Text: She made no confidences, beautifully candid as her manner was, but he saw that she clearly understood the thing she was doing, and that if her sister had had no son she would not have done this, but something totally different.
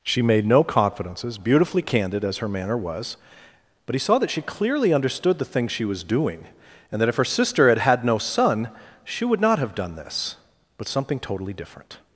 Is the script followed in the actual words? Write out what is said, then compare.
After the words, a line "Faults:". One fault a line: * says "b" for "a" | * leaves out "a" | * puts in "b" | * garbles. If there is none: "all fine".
She made no confidences, beautifully candid as her manner was, but he saw that she clearly understood the thing she was doing, and that if her sister had had no son she would not have done this, but something totally different.
Faults:
all fine